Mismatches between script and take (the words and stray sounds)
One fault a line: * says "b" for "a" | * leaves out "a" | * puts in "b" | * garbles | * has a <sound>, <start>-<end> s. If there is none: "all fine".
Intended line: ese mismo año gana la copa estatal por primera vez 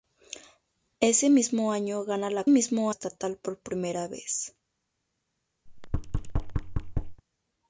* says "mismo" for "copa"
* has a thud, 5.7-7.2 s